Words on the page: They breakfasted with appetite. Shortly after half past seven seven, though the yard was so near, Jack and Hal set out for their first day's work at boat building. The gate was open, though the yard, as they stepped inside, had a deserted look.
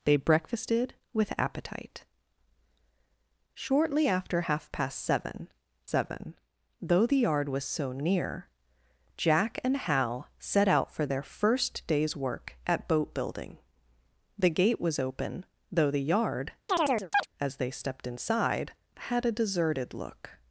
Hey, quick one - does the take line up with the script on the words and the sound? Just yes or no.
no